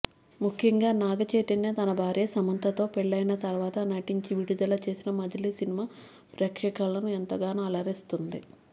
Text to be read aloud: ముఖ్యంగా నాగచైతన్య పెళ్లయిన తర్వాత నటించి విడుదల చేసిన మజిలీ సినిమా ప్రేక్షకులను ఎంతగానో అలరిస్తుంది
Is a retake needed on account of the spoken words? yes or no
yes